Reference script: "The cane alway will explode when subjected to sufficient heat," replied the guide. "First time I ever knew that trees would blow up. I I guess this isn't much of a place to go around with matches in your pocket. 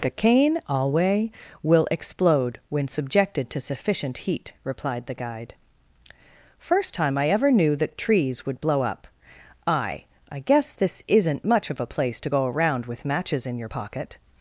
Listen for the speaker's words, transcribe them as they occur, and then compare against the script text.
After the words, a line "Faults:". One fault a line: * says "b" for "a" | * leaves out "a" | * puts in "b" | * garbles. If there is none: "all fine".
"The cane alway will explode when subjected to sufficient heat," replied the guide. "First time I ever knew that trees would blow up. I I guess this isn't much of a place to go around with matches in your pocket.
Faults:
all fine